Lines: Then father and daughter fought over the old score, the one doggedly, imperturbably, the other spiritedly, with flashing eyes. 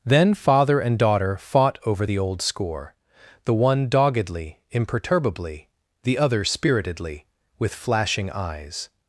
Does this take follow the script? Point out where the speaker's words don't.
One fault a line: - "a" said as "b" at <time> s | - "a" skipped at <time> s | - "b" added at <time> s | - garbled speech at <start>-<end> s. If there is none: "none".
none